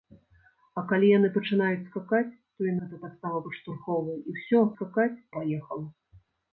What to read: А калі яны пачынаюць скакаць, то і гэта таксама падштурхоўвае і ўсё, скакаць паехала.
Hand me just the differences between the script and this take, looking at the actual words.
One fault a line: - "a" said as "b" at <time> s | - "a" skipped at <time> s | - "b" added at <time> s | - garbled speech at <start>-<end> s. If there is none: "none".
none